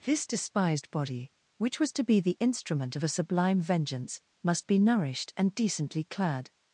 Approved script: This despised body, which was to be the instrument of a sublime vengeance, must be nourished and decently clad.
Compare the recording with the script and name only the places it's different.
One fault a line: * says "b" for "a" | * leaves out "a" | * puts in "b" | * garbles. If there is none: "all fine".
all fine